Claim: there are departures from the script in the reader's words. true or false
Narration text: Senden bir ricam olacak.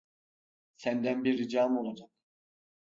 false